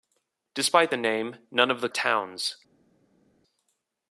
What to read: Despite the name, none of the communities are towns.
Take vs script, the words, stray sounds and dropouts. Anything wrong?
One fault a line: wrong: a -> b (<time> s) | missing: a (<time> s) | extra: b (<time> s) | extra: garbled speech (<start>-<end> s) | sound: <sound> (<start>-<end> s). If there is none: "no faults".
missing: communities are (1.9 s)